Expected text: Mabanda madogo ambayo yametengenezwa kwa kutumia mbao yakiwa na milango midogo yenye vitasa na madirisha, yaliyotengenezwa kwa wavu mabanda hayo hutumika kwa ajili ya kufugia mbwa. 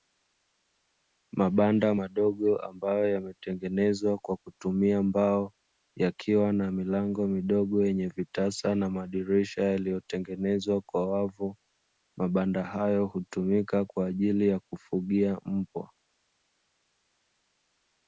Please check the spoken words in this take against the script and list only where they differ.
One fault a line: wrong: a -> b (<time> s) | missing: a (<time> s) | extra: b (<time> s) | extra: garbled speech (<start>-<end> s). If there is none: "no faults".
no faults